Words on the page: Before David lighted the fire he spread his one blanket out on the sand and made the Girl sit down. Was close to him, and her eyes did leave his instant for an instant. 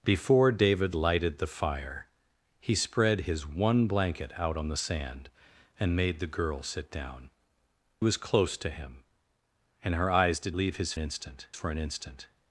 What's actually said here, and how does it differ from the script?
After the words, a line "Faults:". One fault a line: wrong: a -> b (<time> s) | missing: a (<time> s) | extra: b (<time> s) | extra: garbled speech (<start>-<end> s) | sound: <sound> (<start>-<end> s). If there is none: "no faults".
Before David lighted the fire he spread his one blanket out on the sand and made the Girl sit down. Was close to him, and her eyes did leave his instant for an instant.
Faults:
no faults